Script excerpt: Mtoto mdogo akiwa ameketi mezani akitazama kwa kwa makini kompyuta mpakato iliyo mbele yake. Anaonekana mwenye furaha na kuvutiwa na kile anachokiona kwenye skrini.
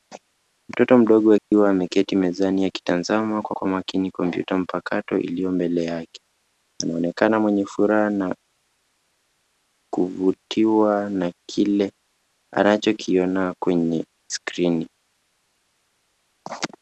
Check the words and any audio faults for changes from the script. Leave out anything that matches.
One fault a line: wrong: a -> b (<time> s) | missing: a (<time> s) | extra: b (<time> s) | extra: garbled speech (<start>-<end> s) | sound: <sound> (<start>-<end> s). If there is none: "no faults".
sound: dropout (1.4-1.5 s)